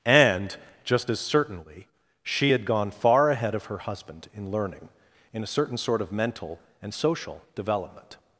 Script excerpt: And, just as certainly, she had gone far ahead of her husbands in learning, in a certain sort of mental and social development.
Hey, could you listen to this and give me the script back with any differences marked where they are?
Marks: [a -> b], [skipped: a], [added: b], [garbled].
And, just as certainly, she had gone far ahead of her [husbands -> husband] in learning, in a certain sort of mental and social development.